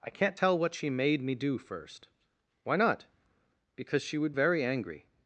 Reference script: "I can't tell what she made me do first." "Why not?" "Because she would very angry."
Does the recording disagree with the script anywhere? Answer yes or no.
no